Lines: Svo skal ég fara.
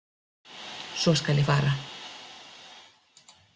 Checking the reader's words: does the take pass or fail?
pass